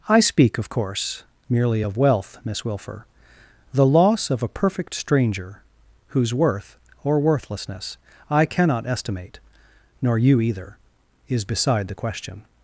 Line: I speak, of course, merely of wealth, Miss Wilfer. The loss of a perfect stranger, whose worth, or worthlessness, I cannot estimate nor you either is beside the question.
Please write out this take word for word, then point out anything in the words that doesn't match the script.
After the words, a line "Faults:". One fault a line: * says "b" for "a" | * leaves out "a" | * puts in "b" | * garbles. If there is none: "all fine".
I speak, of course, merely of wealth, Miss Wilfer. The loss of a perfect stranger, whose worth, or worthlessness, I cannot estimate nor you either is beside the question.
Faults:
all fine